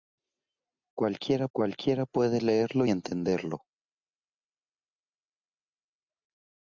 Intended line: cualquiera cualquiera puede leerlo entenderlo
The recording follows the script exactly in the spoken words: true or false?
true